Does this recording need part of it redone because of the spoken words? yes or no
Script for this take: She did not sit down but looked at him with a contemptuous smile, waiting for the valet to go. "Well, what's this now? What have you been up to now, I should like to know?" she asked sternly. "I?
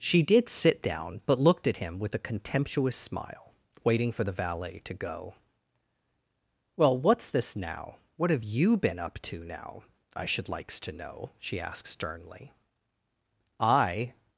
yes